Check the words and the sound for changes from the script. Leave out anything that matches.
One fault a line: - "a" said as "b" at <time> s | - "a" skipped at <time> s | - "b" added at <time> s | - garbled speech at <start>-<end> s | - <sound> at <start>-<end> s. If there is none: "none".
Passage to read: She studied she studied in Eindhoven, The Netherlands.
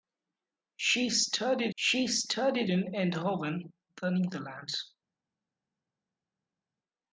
none